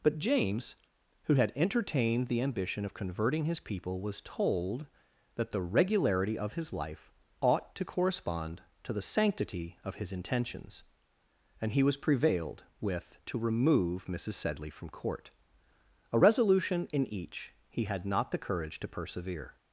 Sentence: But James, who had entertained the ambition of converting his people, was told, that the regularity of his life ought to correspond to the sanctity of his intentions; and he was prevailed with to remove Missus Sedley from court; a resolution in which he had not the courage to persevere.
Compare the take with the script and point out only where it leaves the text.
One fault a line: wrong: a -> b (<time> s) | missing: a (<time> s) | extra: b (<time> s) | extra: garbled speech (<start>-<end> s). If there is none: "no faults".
wrong: which -> each (17.1 s)